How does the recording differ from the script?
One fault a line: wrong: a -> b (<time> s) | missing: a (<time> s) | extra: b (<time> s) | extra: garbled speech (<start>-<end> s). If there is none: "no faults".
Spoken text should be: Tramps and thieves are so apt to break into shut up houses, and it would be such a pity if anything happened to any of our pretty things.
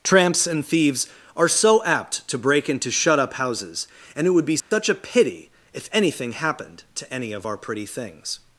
no faults